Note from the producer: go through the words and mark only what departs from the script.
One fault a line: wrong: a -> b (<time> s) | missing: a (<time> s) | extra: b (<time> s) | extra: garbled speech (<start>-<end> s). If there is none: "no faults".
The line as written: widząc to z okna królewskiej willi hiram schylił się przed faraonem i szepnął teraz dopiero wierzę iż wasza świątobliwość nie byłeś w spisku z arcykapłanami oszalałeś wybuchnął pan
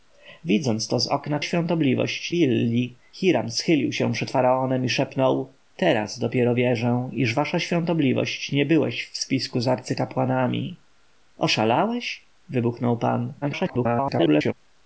wrong: królewskiej -> świątobliwość (1.4 s)
extra: garbled speech (13.4-14.5 s)